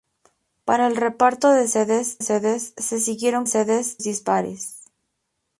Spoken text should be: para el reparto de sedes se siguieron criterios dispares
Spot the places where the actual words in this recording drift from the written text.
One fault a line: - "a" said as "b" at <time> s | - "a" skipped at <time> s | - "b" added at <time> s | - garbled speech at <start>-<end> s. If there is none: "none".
- "sedes" added at 2.2 s
- "criterios" said as "sedes" at 3.5 s